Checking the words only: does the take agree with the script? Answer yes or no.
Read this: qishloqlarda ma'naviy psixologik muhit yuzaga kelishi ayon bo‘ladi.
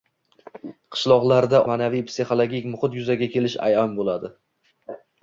yes